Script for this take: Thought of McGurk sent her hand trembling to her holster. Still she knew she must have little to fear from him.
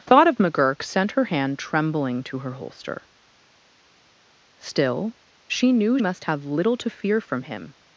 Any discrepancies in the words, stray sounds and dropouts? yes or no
yes